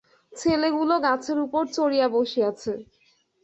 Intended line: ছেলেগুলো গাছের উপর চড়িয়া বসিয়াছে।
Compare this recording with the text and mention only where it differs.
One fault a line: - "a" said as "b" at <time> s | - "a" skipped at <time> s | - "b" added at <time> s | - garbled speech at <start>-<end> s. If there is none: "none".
none